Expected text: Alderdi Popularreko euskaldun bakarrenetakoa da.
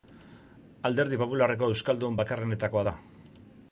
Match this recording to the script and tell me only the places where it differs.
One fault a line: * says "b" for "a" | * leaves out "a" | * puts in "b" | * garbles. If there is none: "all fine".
all fine